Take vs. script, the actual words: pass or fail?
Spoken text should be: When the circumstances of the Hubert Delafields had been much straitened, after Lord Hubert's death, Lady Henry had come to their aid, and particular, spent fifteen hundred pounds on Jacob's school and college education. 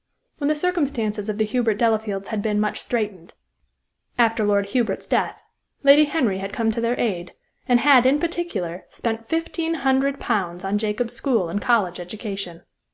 fail